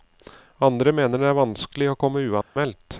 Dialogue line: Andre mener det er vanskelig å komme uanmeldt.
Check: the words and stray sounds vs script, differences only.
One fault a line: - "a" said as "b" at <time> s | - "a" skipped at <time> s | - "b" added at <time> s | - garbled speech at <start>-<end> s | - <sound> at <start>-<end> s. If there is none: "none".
- dropout at 2.4-2.6 s